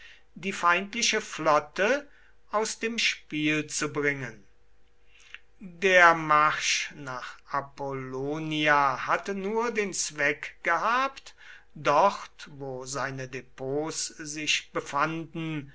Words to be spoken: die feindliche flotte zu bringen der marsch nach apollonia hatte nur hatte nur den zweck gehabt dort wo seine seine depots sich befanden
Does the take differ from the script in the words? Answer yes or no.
yes